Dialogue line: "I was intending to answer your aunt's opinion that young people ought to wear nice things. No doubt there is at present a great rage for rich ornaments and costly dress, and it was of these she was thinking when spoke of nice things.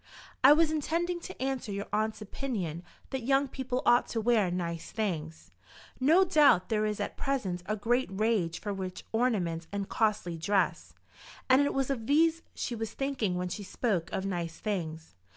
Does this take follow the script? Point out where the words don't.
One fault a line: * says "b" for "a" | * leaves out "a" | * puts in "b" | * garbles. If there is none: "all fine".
* puts in "she"